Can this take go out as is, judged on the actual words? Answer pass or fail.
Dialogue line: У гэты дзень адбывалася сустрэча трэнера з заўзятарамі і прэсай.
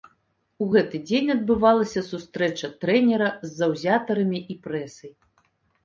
pass